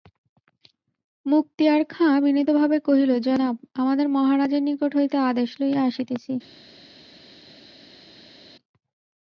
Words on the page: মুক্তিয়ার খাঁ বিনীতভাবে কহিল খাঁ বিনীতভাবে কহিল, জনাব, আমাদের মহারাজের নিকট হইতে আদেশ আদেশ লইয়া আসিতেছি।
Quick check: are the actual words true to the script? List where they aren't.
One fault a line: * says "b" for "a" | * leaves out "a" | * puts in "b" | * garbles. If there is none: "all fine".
* leaves out "খাঁ বিনীতভাবে কহিল"
* leaves out "আদেশ"